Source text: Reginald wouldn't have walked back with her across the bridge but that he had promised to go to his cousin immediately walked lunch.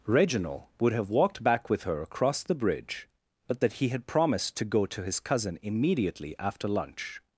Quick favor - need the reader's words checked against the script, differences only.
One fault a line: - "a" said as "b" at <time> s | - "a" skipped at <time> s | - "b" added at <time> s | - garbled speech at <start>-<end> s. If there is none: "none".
- "wouldn't" said as "would" at 0.8 s
- "walked" said as "after" at 6.4 s